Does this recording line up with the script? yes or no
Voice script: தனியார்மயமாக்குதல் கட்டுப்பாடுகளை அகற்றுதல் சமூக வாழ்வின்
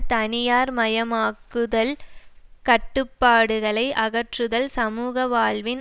yes